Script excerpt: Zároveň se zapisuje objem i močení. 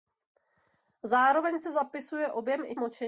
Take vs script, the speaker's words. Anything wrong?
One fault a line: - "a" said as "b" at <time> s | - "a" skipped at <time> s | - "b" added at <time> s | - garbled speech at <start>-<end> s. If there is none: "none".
none